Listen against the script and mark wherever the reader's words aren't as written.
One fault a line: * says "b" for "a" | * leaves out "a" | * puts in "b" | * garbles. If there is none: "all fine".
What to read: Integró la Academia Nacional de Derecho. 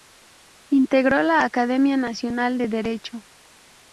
all fine